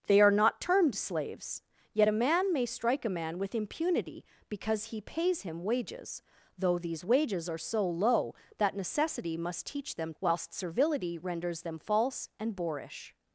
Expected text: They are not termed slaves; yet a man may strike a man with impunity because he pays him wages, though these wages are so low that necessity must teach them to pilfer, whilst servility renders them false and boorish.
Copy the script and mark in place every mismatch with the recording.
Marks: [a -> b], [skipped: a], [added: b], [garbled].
They are not termed slaves; yet a man may strike a man with impunity because he pays him wages, though these wages are so low that necessity must teach them [skipped: to pilfer,] whilst servility renders them false and boorish.